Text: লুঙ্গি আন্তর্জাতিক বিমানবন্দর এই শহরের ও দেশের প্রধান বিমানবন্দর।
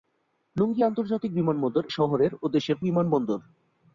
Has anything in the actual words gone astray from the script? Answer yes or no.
yes